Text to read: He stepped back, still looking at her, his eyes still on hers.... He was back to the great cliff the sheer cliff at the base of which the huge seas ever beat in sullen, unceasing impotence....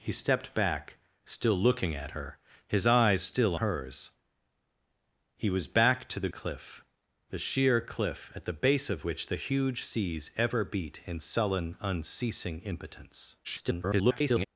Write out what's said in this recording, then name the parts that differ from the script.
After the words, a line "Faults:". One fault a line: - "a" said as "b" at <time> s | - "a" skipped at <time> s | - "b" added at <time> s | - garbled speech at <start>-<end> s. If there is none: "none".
He stepped back, still looking at her, his eyes still hers.... He was back to the cliff the sheer cliff at the base of which the huge seas ever beat in sullen, unceasing impotence.... [garbled]
Faults:
- "on" skipped at 3.5 s
- "great" skipped at 6.3 s
- garbled speech at 13.4-14.5 s